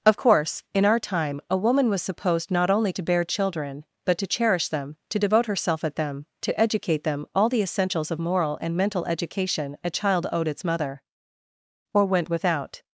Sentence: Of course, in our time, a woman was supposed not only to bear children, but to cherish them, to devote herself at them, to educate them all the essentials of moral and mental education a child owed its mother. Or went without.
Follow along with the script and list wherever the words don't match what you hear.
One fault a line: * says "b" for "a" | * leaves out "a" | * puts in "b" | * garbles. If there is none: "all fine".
all fine